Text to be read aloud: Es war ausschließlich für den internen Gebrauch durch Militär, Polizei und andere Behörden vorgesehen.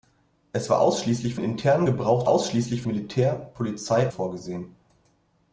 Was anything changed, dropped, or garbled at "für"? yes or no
yes